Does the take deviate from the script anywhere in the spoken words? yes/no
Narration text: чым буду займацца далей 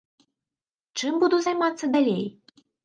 no